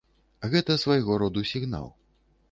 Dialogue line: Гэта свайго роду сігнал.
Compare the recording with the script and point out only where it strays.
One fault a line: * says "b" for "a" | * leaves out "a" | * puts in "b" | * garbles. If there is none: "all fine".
all fine